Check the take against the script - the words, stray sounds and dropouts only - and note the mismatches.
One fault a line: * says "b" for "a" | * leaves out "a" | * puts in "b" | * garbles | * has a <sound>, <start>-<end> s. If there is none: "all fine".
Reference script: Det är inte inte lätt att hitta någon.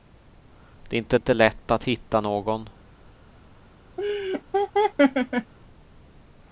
* has a laugh, 4.0-5.5 s